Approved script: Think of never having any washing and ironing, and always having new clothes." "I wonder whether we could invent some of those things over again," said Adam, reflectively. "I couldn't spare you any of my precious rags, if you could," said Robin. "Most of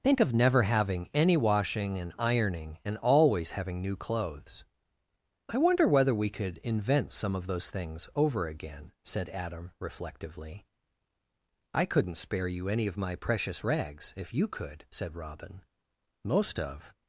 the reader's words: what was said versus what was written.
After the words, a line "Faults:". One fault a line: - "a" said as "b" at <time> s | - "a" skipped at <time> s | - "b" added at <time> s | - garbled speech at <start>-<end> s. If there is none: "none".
Think of never having any washing and ironing, and always having new clothes." "I wonder whether we could invent some of those things over again," said Adam, reflectively. "I couldn't spare you any of my precious rags, if you could," said Robin. "Most of
Faults:
none